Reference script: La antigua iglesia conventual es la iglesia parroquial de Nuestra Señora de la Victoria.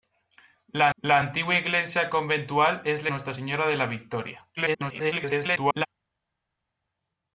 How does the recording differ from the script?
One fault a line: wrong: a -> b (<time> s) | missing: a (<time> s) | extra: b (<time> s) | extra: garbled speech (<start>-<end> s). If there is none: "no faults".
extra: la (0.9 s)
missing: iglesia parroquial de (3.1 s)
extra: garbled speech (4.6-5.9 s)